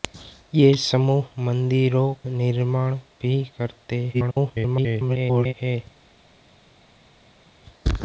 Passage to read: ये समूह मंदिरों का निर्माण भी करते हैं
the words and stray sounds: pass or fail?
fail